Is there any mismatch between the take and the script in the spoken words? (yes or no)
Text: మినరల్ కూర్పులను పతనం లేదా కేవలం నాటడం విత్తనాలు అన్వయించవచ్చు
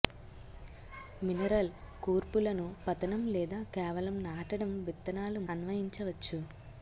no